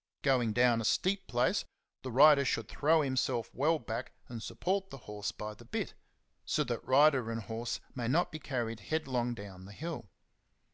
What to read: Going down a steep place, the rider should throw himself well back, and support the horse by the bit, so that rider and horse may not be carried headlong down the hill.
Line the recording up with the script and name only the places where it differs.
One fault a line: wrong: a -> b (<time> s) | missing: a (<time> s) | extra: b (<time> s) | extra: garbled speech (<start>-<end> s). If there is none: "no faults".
no faults